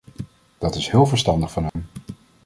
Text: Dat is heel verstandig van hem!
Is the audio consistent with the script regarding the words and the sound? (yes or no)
no